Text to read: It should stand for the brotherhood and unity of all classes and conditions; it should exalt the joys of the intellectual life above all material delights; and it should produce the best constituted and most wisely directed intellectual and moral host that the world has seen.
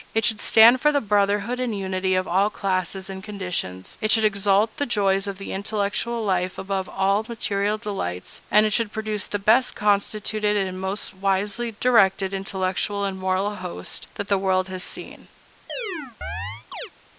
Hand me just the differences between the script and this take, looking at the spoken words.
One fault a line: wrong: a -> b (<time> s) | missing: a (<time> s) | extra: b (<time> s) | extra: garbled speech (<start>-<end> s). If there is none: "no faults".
no faults